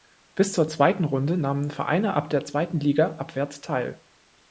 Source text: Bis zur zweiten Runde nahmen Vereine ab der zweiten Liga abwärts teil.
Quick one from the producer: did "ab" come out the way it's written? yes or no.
yes